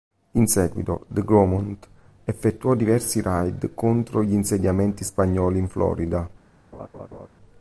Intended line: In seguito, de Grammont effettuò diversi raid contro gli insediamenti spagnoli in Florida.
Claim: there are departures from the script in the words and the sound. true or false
true